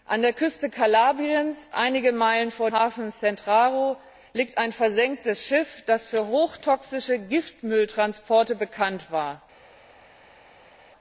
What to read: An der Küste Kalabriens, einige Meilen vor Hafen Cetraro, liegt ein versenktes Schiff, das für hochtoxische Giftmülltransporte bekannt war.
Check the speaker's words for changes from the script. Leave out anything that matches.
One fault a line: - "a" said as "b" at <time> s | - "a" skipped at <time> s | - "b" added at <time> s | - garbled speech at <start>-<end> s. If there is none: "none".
none